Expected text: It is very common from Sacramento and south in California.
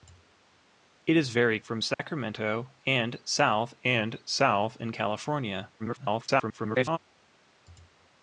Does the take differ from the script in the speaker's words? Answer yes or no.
yes